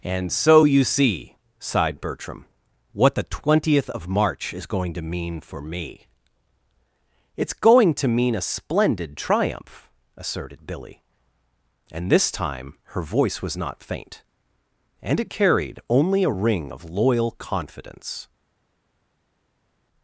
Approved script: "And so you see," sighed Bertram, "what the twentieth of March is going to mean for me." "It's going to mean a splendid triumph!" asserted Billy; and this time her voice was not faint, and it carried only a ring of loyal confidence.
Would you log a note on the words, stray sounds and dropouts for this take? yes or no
no